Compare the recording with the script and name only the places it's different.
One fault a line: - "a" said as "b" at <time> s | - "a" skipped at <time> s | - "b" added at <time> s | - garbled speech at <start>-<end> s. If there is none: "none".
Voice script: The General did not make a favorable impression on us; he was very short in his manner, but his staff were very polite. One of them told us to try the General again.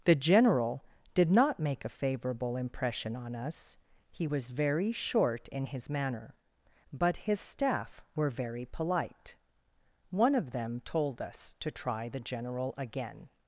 none